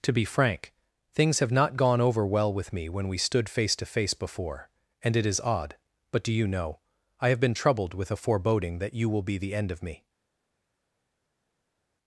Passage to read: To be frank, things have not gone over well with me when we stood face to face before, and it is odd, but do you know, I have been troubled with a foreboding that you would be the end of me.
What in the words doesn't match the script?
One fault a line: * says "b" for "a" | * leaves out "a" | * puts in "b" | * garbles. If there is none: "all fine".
* says "will" for "would"